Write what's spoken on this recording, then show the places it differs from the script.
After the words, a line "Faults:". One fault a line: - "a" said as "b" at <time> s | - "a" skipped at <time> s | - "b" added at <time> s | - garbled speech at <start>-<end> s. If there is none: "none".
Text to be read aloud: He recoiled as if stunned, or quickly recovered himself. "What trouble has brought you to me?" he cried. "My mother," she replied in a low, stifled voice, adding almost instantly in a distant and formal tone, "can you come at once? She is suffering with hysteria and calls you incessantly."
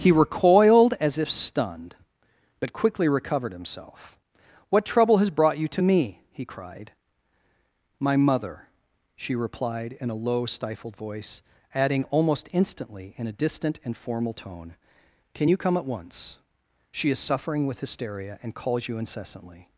He recoiled as if stunned, but quickly recovered himself. "What trouble has brought you to me?" he cried. "My mother," she replied in a low, stifled voice, adding almost instantly in a distant and formal tone, "can you come at once? She is suffering with hysteria and calls you incessantly."
Faults:
- "or" said as "but" at 2.6 s